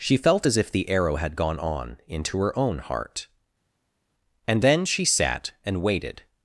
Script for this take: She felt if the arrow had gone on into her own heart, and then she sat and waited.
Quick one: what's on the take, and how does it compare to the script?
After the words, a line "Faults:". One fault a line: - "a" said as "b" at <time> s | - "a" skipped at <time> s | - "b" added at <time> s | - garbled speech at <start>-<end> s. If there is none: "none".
She felt as if the arrow had gone on into her own heart, and then she sat and waited.
Faults:
- "as" added at 0.4 s